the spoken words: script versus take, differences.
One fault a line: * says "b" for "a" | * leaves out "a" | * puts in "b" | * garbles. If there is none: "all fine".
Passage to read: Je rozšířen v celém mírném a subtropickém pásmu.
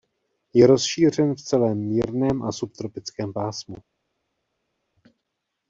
all fine